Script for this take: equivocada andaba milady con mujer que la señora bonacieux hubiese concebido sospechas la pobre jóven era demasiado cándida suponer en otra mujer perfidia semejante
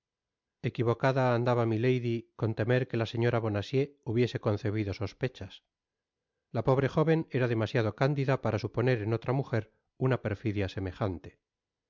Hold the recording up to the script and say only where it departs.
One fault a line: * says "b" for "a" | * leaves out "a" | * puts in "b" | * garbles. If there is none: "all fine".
* says "temer" for "mujer"
* puts in "para"
* puts in "una"